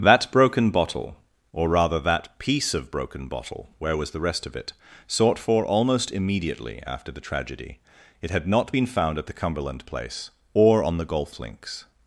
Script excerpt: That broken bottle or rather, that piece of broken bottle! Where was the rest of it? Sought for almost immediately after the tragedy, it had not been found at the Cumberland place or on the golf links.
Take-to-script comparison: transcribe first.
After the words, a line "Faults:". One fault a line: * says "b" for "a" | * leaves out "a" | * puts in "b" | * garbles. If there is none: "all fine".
That broken bottle or rather, that piece of broken bottle! Where was the rest of it? Sought for almost immediately after the tragedy, it had not been found at the Cumberland place or on the golf links.
Faults:
all fine